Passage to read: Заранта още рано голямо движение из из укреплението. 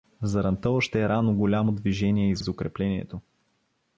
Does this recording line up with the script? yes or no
yes